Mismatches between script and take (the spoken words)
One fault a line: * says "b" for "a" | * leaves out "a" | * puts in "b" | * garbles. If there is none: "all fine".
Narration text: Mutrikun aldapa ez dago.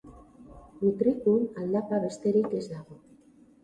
* puts in "besterik"